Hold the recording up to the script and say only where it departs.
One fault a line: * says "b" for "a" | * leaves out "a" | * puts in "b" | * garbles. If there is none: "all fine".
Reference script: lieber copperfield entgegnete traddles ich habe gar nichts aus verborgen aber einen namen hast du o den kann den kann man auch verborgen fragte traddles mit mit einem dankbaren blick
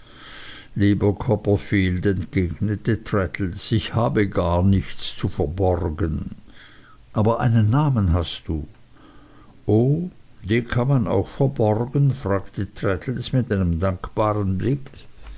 * says "zu" for "aus"
* leaves out "den kann"
* leaves out "mit"